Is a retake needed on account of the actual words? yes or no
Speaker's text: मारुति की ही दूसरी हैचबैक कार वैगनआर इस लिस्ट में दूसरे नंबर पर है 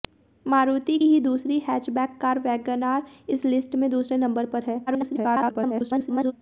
yes